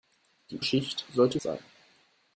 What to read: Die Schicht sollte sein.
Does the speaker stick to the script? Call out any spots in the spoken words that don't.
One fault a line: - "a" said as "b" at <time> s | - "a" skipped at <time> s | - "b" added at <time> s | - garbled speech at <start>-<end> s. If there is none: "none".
none